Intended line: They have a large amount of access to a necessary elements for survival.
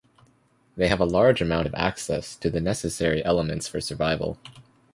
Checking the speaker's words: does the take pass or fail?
fail